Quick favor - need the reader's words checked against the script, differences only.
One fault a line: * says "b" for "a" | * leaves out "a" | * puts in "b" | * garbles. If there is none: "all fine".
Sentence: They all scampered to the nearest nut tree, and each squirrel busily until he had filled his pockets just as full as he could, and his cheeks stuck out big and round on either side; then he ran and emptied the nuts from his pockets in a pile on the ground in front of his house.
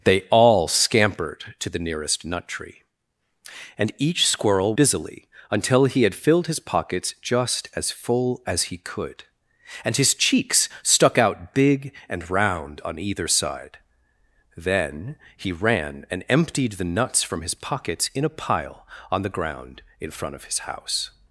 all fine